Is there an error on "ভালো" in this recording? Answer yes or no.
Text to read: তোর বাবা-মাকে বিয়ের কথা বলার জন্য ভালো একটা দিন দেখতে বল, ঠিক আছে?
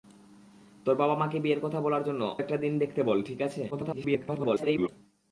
yes